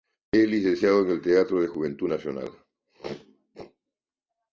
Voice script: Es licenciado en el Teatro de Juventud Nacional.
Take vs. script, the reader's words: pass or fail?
pass